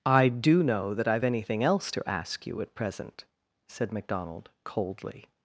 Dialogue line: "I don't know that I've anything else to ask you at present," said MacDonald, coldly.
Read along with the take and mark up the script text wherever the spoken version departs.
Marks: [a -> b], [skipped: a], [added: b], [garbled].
"I [don't -> do] know that I've anything else to ask you at present," said MacDonald, coldly.